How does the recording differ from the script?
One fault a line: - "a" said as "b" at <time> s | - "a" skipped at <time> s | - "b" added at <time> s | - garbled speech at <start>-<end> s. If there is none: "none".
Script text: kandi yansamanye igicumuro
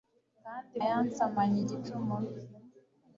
none